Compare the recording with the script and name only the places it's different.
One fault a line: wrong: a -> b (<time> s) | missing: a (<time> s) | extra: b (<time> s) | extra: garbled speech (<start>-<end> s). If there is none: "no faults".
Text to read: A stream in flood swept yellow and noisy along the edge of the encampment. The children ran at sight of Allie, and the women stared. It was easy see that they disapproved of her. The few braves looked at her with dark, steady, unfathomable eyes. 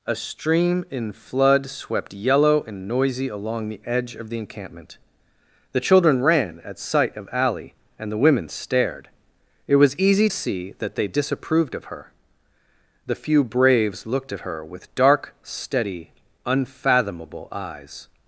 no faults